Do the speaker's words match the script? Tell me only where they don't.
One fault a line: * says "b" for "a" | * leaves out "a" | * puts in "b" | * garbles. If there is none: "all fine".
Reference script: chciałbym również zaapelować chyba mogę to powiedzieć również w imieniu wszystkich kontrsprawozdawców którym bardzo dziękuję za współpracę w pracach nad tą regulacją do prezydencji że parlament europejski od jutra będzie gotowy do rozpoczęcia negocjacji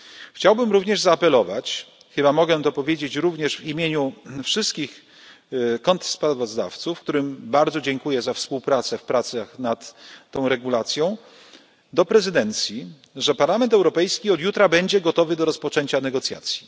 all fine